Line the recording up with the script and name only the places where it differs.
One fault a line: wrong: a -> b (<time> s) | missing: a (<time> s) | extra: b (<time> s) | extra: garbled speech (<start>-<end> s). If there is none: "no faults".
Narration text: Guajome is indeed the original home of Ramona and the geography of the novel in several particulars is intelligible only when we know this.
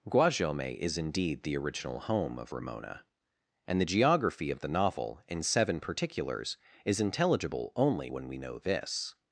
wrong: several -> seven (5.4 s)